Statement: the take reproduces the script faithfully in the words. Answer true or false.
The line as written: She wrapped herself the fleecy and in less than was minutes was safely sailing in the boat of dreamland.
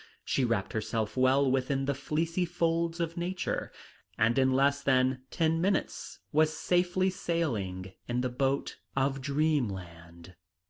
false